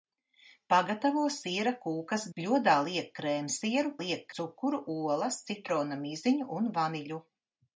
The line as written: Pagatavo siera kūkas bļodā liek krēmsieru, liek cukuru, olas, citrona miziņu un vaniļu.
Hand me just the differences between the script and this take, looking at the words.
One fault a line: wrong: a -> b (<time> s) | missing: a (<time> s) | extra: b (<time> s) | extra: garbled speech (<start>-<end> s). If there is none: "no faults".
no faults